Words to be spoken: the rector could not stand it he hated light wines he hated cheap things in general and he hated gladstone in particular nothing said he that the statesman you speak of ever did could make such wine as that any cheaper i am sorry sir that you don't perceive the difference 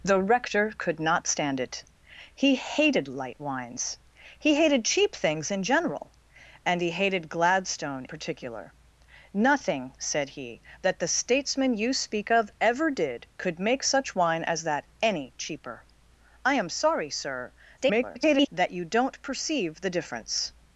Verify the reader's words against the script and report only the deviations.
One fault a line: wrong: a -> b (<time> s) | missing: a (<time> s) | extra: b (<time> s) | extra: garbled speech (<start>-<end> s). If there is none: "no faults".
missing: in (8.1 s)
extra: garbled speech (17.8-18.5 s)